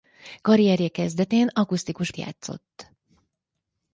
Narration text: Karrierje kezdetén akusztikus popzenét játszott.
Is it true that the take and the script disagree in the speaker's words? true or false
true